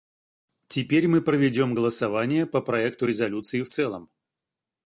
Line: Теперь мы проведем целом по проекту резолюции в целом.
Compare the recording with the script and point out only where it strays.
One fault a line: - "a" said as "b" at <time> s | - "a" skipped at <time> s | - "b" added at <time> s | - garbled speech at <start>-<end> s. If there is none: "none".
- "целом" said as "голосование" at 1.7 s